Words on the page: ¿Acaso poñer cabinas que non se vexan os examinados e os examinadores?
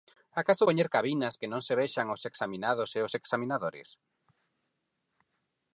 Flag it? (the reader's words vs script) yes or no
no